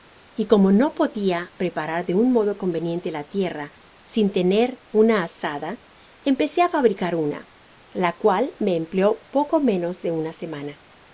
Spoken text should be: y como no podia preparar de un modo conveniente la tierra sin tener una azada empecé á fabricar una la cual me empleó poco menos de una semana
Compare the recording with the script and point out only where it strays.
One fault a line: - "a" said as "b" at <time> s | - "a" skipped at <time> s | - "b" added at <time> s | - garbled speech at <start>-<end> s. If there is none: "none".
none